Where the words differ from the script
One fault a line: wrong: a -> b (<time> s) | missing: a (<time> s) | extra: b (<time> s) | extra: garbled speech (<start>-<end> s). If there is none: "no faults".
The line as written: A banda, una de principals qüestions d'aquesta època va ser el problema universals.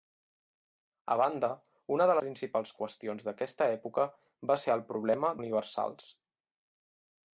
no faults